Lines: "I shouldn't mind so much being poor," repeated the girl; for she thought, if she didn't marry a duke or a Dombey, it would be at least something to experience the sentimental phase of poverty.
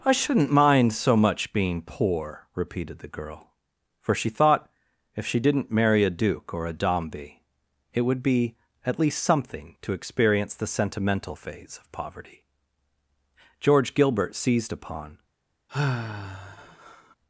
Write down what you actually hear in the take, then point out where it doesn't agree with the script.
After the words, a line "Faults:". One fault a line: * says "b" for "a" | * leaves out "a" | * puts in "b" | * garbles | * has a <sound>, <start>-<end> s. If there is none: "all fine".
"I shouldn't mind so much being poor," repeated the girl; for she thought, if she didn't marry a duke or a Dombey, it would be at least something to experience the sentimental phase of poverty. George Gilbert seized upon
Faults:
* puts in "George Gilbert seized upon"
* has a sigh, 15.7-17.2 s